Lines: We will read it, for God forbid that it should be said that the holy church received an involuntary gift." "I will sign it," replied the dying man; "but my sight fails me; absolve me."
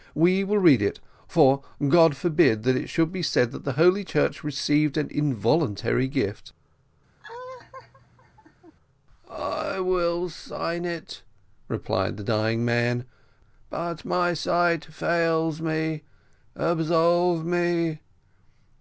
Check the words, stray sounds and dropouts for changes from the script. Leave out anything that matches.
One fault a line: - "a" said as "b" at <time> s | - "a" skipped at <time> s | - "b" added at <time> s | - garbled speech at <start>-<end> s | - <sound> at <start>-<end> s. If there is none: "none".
- laugh at 7.2-8.7 s